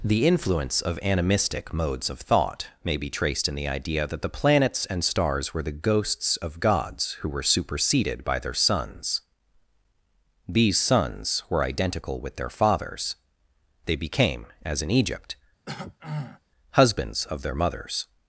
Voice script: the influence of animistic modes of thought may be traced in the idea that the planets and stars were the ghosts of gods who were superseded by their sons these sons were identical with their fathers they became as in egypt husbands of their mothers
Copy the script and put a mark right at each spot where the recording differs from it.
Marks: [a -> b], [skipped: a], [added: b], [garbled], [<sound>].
the influence of animistic modes of thought may be traced in the idea that the planets and stars were the ghosts of gods who were superseded by their sons these sons were identical with their fathers they became as in egypt [throat clearing] husbands of their mothers